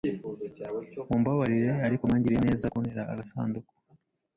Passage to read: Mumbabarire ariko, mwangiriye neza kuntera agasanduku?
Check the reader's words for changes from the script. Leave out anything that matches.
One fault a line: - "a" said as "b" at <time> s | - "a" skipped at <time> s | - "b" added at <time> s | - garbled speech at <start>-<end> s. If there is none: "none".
none